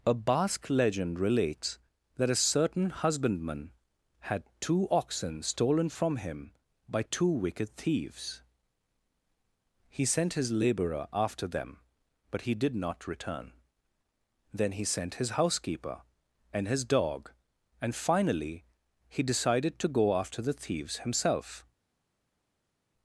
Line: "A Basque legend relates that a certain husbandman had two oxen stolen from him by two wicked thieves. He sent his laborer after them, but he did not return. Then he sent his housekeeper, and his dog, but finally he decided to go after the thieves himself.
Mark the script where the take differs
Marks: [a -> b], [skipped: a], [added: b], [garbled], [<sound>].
"A Basque legend relates that a certain husbandman had two oxen stolen from him by two wicked thieves. He sent his laborer after them, but he did not return. Then he sent his housekeeper, and his dog, [but -> and] finally he decided to go after the thieves himself.